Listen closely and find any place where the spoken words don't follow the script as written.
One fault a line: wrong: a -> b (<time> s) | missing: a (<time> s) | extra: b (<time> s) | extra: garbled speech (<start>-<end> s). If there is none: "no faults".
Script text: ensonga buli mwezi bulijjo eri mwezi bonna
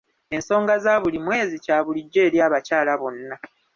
extra: za (0.8 s)
extra: kya (1.6 s)
wrong: mwezi -> abakyala (2.5 s)